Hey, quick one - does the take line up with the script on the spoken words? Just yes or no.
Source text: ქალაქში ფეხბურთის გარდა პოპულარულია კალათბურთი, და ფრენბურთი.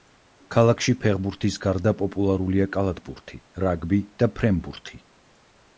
no